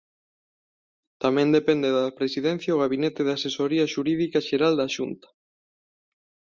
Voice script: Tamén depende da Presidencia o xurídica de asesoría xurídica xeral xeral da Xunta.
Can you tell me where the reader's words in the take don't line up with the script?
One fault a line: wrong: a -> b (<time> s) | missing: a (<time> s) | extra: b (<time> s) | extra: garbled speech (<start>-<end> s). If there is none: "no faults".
wrong: xurídica -> gabinete (2.8 s)
missing: xeral (4.7 s)